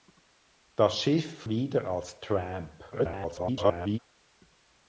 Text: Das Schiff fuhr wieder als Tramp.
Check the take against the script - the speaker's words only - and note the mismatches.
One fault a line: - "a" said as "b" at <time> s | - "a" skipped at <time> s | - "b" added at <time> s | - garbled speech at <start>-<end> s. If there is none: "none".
- "fuhr" skipped at 1.4 s
- garbled speech at 2.9-4.0 s